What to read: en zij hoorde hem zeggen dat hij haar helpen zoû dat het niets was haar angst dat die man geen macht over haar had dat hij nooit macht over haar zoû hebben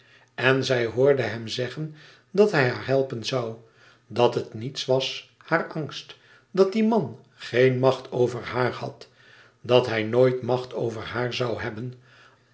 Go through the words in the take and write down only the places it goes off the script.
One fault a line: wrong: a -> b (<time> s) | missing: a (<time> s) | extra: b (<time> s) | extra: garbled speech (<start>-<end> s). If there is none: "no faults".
no faults